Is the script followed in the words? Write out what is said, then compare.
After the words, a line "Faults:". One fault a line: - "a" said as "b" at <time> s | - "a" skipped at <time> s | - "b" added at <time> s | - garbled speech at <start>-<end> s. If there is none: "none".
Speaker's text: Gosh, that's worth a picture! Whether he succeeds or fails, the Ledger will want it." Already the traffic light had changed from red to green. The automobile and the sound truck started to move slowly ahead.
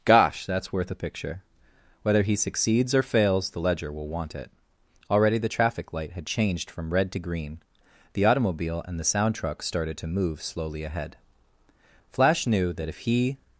Gosh, that's worth a picture! Whether he succeeds or fails, the Ledger will want it." Already the traffic light had changed from red to green. The automobile and the sound truck started to move slowly ahead. Flash knew that if he
Faults:
- "Flash knew that if he" added at 12.1 s